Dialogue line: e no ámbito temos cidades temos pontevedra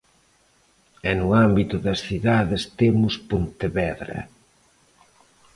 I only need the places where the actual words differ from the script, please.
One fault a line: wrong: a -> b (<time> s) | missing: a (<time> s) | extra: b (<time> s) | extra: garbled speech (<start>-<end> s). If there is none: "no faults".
wrong: temos -> das (1.9 s)